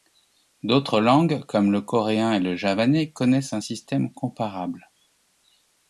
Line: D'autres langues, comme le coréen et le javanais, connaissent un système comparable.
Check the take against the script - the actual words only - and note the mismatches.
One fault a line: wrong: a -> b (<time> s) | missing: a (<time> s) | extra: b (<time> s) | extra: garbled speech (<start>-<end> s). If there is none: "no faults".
no faults